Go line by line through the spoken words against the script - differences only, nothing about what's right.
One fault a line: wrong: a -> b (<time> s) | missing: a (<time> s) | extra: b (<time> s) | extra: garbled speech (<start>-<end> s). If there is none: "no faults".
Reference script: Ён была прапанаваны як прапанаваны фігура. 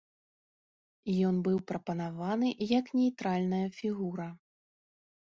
wrong: была -> быў (1.5 s)
wrong: прапанаваны -> нейтральная (3.0 s)